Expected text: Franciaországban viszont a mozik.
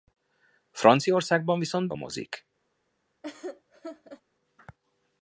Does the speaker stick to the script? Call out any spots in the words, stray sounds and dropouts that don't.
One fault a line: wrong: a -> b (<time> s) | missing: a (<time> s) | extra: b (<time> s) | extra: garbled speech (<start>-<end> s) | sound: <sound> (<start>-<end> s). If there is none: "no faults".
sound: laugh (3.2-4.2 s)